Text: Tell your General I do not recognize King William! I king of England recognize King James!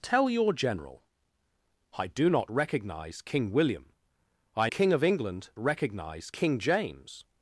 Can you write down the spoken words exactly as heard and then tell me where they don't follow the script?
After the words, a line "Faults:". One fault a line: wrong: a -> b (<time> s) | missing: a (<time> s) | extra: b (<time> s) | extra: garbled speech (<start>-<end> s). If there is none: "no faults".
Tell your General I do not recognize King William! I king of England recognize King James!
Faults:
no faults